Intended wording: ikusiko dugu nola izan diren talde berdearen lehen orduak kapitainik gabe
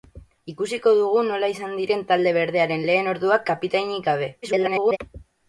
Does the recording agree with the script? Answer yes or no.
no